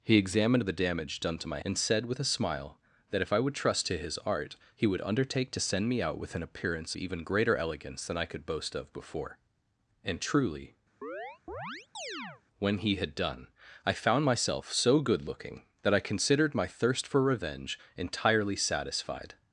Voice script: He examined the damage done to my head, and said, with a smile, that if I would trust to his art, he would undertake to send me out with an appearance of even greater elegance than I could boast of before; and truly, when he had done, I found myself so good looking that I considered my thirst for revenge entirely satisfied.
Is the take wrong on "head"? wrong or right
wrong